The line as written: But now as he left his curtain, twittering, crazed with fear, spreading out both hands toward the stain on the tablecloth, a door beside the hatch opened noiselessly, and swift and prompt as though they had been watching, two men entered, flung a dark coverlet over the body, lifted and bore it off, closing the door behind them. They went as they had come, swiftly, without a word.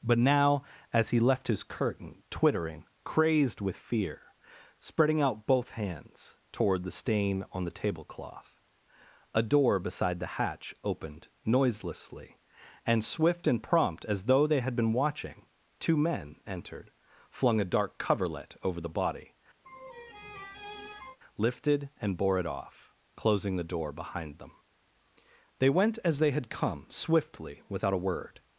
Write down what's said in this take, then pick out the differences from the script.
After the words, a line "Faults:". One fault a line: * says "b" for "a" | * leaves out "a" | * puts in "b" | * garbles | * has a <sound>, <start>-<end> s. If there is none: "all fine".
But now as he left his curtain, twittering, crazed with fear, spreading out both hands toward the stain on the tablecloth, a door beside the hatch opened noiselessly, and swift and prompt as though they had been watching, two men entered, flung a dark coverlet over the body, lifted and bore it off, closing the door behind them. They went as they had come, swiftly, without a word.
Faults:
* has a laugh, 19.6-21.2 s